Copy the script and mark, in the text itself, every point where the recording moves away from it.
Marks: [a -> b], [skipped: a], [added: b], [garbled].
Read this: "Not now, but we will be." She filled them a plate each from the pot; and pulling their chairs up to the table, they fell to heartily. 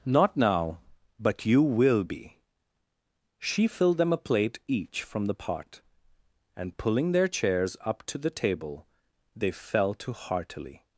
"Not now, but [we -> you] will be." She filled them a plate each from the pot; and pulling their chairs up to the table, they fell to heartily.